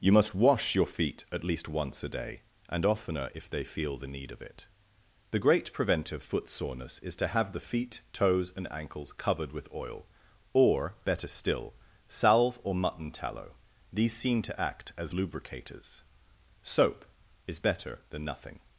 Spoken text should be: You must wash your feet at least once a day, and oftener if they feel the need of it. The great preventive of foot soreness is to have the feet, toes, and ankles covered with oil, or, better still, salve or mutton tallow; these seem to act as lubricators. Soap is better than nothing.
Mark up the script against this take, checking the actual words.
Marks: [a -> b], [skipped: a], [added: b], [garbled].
You must wash your feet at least once a day, and oftener if they feel the need of it. The great preventive [skipped: of] foot soreness is to have the feet, toes, and ankles covered with oil, or, better still, salve or mutton tallow; these seem to act as lubricators. Soap is better than nothing.